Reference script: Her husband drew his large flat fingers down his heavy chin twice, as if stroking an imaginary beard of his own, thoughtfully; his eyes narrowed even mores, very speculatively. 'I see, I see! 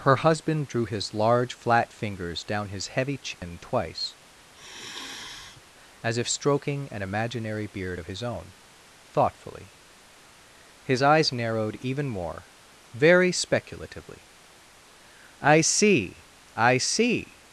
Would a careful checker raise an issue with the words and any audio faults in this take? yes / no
yes